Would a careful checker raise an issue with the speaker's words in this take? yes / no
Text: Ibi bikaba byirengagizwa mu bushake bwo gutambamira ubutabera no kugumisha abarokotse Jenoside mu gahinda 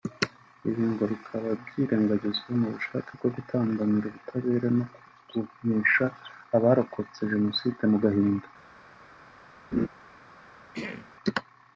yes